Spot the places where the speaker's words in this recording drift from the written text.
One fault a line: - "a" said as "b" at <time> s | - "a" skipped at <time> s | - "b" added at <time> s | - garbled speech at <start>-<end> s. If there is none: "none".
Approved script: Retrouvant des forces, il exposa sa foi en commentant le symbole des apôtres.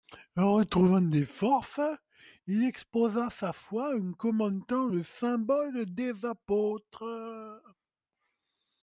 none